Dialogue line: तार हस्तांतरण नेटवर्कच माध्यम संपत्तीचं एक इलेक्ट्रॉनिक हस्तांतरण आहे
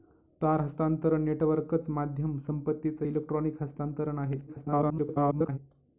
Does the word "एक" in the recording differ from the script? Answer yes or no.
yes